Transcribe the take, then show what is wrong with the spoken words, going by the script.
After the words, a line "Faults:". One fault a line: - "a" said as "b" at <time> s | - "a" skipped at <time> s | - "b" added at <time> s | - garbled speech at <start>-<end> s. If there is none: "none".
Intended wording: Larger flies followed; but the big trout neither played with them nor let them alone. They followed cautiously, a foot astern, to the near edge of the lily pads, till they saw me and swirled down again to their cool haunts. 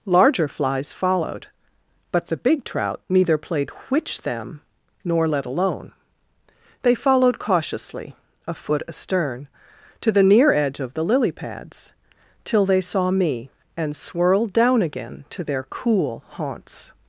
Larger flies followed; but the big trout neither played which them nor let alone. They followed cautiously, a foot astern, to the near edge of the lily pads, till they saw me and swirled down again to their cool haunts.
Faults:
- "with" said as "which" at 3.9 s
- "them" skipped at 5.5 s